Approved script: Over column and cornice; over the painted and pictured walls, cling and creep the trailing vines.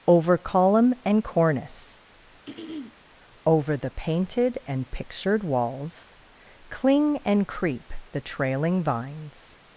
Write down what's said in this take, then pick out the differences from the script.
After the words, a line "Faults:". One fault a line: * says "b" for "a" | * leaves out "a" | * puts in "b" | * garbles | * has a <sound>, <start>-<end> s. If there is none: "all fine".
Over column and cornice; over the painted and pictured walls, cling and creep the trailing vines.
Faults:
* has a throat clearing, 2.5-3.0 s